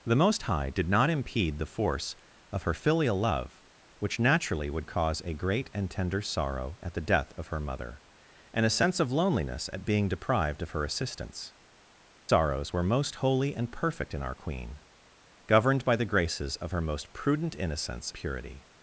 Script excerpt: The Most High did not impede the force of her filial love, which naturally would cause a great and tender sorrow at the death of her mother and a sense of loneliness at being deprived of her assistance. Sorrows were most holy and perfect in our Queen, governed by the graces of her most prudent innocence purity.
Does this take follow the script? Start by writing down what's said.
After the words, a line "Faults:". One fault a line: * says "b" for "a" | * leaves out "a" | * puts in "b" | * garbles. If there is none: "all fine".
The Most High did not impede the force of her filial love, which naturally would cause a great and tender sorrow at the death of her mother and a sense of loneliness at being deprived of her assistance. Sorrows were most holy and perfect in our Queen, governed by the graces of her most prudent innocence purity.
Faults:
all fine